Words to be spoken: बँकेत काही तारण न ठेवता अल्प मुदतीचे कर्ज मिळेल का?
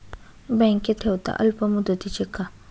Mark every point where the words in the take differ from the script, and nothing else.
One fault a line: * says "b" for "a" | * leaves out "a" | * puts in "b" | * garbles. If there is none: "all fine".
* leaves out "काही तारण न"
* leaves out "कर्ज मिळेल"